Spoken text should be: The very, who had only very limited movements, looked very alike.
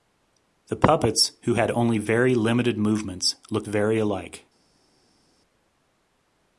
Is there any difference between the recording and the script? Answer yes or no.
yes